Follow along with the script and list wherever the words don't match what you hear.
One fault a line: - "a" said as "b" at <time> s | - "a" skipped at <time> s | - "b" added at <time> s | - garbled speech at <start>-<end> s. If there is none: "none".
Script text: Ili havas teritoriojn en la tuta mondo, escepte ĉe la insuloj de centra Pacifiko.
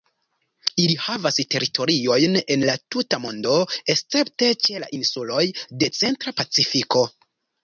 none